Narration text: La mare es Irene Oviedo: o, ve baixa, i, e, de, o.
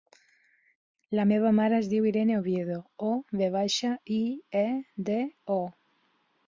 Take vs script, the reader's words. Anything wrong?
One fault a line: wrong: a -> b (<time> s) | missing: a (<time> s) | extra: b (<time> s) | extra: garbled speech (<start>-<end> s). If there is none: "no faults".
extra: meva (1.3 s)
extra: diu (1.9 s)